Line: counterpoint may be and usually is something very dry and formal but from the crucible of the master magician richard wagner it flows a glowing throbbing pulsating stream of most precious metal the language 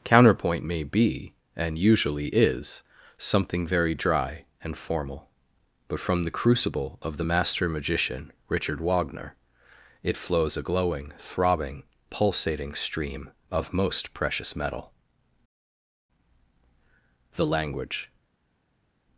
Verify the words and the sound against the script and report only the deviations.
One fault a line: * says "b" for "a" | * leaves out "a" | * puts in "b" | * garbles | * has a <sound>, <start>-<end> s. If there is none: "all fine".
all fine